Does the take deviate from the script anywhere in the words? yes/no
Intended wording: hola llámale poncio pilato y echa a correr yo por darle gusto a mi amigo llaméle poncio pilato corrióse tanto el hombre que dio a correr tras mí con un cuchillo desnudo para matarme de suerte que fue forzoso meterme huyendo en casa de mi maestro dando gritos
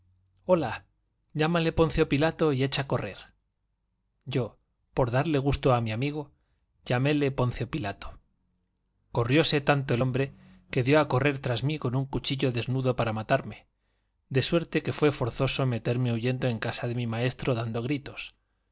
no